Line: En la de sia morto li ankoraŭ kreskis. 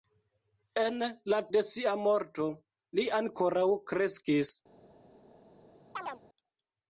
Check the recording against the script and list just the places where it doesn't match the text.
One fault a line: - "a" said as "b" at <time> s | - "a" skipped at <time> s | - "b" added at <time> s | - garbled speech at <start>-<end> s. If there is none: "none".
none